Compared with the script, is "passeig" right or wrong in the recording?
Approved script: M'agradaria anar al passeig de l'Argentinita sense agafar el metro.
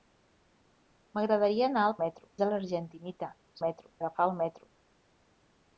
wrong